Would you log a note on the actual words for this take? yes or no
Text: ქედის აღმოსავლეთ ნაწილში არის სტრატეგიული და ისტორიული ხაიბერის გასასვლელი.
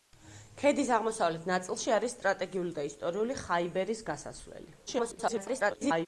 yes